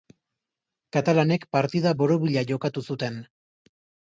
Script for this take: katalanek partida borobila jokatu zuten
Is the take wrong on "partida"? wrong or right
right